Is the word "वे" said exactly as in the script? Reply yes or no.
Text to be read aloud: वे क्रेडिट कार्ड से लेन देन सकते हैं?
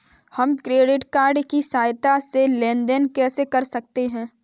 no